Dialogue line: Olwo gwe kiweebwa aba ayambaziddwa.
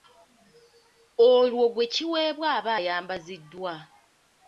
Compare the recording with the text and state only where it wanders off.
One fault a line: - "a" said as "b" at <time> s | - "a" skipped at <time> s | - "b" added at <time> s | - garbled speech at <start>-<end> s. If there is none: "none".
none